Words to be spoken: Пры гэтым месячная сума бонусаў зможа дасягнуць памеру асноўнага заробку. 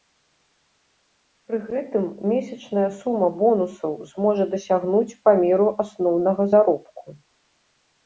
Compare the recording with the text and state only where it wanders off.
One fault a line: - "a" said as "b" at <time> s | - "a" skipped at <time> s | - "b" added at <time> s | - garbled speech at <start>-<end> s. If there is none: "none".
none